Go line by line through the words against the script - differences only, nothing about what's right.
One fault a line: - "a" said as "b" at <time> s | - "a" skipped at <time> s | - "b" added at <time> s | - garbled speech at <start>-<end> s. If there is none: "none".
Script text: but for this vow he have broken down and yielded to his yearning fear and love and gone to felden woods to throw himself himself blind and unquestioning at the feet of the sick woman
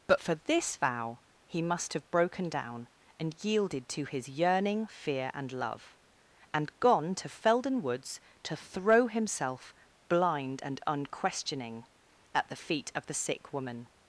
- "must" added at 1.6 s
- "himself" skipped at 9.7 s